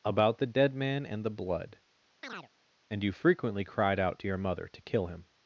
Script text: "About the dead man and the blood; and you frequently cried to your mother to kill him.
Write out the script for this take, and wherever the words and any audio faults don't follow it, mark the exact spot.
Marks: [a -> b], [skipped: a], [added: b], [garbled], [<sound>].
"About the dead man and the blood; [chirp] and you frequently cried [added: out] to your mother to kill him.